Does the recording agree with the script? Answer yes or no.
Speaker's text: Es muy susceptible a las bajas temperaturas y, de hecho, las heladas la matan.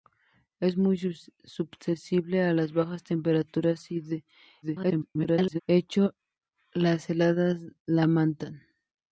no